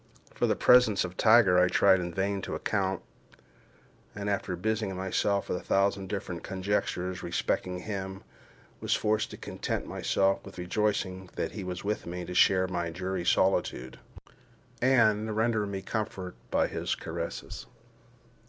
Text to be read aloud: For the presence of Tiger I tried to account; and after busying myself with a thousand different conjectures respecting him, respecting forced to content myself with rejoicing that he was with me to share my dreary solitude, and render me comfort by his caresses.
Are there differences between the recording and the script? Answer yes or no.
yes